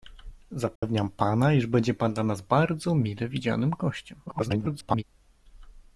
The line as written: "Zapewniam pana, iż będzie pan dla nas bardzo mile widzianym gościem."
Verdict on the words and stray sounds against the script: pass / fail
fail